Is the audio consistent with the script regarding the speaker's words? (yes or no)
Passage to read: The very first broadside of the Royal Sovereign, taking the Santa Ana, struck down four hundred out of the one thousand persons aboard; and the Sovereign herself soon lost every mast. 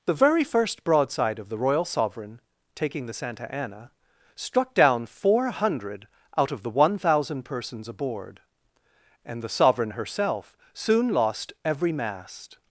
yes